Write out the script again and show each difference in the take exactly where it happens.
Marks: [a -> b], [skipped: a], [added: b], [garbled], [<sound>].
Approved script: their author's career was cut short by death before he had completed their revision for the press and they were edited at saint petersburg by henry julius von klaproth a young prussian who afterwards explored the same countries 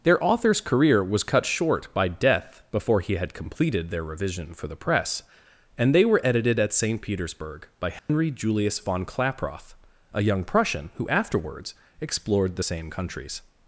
their author's career was cut short by death before he had completed their revision for the press and they were edited at saint petersburg by henry [dropout] julius von klaproth a young prussian who afterwards explored the same countries